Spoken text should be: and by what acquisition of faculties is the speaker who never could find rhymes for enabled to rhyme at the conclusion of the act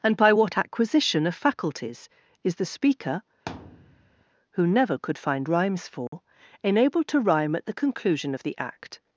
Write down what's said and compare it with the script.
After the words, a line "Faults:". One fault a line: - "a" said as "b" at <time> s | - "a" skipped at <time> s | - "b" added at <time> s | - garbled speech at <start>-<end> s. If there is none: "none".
and by what acquisition of faculties is the speaker who never could find rhymes for enabled to rhyme at the conclusion of the act
Faults:
none